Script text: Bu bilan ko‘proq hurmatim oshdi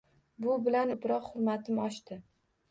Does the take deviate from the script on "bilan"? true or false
false